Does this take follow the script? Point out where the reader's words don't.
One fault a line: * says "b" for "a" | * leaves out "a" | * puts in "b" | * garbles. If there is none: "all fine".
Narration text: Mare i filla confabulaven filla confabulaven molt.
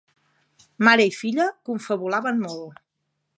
* leaves out "filla confabulaven"